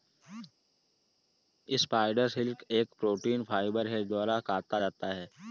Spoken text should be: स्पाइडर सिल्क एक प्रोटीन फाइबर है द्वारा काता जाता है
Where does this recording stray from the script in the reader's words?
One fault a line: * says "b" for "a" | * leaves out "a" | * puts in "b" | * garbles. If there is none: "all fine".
all fine